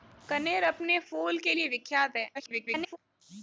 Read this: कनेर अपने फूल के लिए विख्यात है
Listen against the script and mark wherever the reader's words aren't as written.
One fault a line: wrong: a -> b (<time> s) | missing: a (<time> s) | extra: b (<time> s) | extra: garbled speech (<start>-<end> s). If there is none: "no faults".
extra: garbled speech (2.3-3.0 s)